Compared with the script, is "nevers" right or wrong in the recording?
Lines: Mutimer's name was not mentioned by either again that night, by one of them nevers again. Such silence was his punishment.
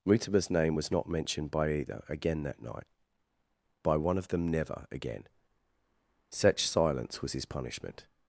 wrong